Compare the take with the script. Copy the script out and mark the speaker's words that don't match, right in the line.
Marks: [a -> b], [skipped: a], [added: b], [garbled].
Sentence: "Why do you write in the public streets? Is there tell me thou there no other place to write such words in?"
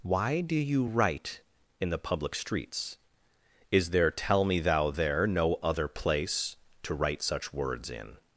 "Why do you write in the public streets? Is there tell me thou there no other place to write such words in?"